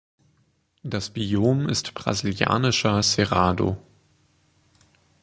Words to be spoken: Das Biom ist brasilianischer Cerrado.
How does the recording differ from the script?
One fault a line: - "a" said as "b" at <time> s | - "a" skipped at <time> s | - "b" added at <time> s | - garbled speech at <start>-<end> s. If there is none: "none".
none